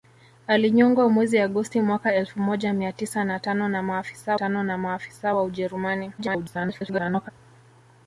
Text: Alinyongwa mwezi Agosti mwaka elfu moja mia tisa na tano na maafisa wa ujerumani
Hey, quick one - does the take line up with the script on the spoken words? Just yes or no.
no